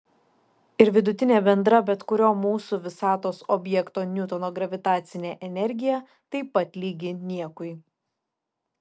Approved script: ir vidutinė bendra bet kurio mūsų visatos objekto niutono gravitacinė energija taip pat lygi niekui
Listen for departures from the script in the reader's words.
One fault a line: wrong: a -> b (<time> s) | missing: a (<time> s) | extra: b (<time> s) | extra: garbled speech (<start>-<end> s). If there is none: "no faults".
no faults